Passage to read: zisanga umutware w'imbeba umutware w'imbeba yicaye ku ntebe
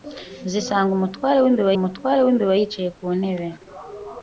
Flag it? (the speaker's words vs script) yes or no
no